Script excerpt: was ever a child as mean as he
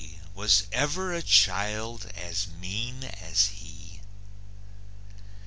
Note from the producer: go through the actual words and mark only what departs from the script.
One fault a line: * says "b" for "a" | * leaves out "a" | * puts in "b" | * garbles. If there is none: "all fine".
all fine